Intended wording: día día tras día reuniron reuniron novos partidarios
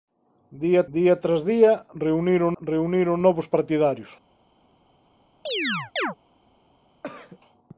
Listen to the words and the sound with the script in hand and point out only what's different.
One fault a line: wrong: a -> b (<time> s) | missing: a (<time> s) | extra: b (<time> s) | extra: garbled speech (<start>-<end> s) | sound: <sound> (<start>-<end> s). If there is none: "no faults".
sound: chirp (5.5-6.2 s)
sound: throat clearing (7.0-7.4 s)